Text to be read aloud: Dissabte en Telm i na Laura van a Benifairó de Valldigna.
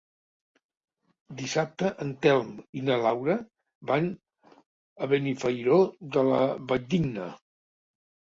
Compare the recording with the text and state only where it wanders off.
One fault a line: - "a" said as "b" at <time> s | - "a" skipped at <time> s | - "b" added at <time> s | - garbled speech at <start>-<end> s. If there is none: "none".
- "la" added at 6.3 s